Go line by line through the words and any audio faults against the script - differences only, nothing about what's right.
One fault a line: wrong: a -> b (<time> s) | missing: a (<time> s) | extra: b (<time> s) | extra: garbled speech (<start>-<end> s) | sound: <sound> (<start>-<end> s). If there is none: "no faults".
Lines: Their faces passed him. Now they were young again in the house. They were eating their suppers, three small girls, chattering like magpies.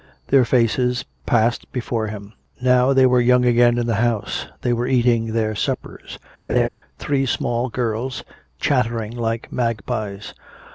extra: before (1.7 s)
sound: laugh (6.5-6.7 s)